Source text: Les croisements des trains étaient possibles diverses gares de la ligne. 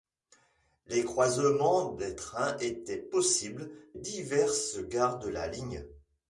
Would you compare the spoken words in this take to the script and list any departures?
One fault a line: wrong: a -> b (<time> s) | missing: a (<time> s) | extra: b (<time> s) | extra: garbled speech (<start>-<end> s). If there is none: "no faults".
no faults